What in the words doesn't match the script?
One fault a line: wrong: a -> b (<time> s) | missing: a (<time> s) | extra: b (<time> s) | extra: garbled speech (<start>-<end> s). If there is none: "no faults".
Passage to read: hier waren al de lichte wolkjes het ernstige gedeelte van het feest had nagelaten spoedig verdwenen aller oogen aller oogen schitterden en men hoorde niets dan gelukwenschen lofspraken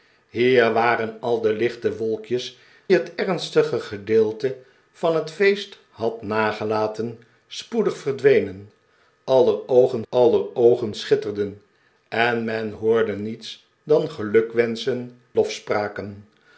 no faults